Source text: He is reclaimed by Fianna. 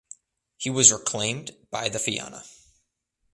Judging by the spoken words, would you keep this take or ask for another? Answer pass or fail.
fail